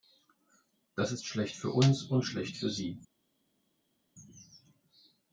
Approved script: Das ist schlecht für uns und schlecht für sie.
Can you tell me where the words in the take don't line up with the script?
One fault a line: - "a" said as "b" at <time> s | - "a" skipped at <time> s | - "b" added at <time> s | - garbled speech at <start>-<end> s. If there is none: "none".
none